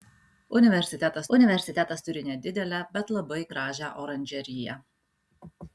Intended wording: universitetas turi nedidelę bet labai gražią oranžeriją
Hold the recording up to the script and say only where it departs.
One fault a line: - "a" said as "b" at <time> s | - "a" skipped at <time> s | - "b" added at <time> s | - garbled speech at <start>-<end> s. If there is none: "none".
- "universitetas" added at 1.4 s